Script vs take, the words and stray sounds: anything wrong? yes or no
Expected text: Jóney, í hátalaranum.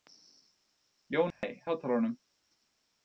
yes